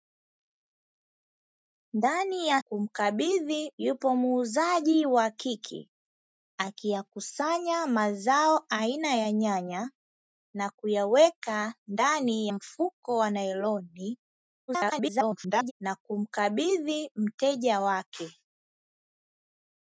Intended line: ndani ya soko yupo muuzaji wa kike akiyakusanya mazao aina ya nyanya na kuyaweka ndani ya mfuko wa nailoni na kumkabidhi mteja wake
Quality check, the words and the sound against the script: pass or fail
fail